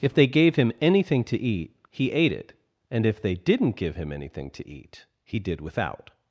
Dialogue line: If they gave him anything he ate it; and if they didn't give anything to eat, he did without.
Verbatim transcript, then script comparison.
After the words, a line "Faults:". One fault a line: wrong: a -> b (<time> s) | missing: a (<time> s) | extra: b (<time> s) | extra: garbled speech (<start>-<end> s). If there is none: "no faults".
If they gave him anything to eat, he ate it; and if they didn't give him anything to eat, he did without.
Faults:
extra: to eat (1.2 s)
extra: him (4.0 s)